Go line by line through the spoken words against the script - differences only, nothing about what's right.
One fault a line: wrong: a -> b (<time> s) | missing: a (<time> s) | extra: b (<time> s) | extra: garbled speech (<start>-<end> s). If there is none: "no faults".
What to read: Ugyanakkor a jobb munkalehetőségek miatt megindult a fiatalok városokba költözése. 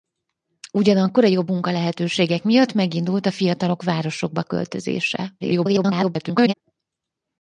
extra: garbled speech (5.4-6.5 s)